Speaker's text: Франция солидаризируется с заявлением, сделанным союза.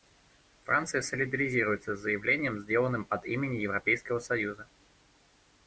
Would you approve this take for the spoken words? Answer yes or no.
no